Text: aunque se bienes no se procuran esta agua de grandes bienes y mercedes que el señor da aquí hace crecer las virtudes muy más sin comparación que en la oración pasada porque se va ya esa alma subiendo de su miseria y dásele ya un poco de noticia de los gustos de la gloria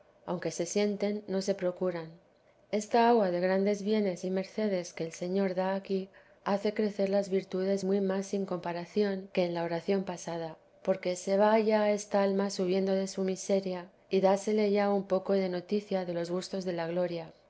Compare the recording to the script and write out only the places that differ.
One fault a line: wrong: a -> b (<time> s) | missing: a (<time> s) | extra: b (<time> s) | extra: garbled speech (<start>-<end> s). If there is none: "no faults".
wrong: bienes -> sienten (0.7 s)
wrong: esa -> esta (11.9 s)